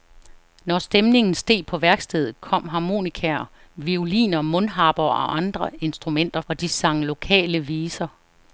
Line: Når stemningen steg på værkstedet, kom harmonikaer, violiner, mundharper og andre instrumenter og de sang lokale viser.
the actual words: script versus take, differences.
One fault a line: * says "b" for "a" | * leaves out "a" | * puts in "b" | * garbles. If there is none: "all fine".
all fine